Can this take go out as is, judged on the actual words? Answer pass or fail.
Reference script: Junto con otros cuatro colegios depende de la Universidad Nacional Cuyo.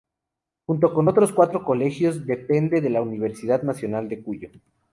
fail